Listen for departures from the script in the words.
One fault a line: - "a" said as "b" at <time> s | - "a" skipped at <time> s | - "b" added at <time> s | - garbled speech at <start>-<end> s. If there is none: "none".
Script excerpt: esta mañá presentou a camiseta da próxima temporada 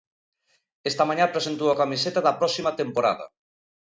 none